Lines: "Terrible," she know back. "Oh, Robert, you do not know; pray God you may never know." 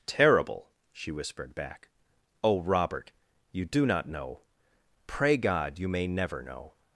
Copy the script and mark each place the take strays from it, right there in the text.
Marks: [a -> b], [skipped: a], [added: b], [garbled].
"Terrible," she [know -> whispered] back. "Oh, Robert, you do not know; pray God you may never know."